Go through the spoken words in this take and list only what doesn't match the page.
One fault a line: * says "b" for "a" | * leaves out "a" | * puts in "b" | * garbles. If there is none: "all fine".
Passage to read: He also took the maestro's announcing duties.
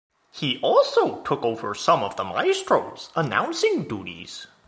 * puts in "over some of"